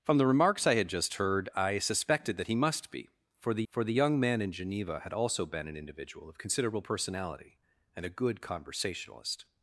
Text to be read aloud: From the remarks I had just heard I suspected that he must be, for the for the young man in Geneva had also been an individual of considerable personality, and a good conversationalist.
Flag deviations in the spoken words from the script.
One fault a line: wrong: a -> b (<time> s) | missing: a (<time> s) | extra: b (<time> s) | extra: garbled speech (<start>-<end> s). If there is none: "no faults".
no faults